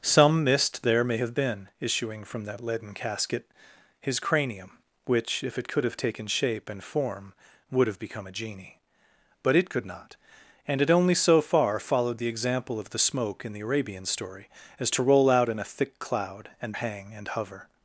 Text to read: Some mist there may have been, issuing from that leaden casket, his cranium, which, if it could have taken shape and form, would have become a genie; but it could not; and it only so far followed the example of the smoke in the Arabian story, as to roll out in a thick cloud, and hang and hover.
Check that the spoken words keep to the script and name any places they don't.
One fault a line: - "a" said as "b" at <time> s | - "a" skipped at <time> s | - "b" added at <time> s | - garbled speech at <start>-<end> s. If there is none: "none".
none